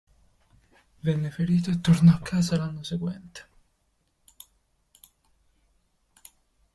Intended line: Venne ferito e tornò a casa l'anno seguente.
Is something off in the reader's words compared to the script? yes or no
no